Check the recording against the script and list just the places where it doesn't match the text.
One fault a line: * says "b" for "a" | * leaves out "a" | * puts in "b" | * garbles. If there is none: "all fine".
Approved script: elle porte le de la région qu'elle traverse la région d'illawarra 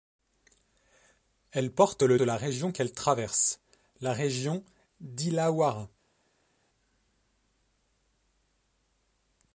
all fine